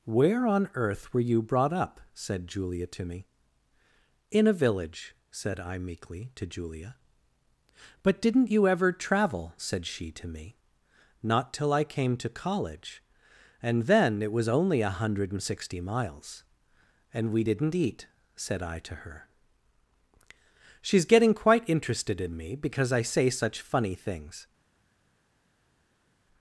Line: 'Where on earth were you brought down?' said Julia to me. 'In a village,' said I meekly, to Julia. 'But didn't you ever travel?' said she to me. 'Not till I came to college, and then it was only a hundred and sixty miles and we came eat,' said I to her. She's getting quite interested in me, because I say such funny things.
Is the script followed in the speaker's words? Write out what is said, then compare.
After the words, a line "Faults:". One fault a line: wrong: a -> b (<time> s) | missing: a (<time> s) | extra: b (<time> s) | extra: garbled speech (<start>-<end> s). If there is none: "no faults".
'Where on earth were you brought up?' said Julia to me. 'In a village,' said I meekly, to Julia. 'But didn't you ever travel?' said she to me. 'Not till I came to college, and then it was only a hundred and sixty miles and we didn't eat,' said I to her. She's getting quite interested in me, because I say such funny things.
Faults:
wrong: down -> up (1.7 s)
wrong: came -> didn't (17.4 s)